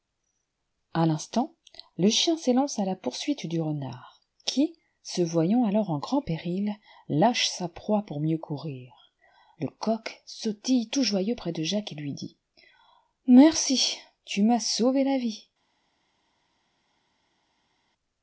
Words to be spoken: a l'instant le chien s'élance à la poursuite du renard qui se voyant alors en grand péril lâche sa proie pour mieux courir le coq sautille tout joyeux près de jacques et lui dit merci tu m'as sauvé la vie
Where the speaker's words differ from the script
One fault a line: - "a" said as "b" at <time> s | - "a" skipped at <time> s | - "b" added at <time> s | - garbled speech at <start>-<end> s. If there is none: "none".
none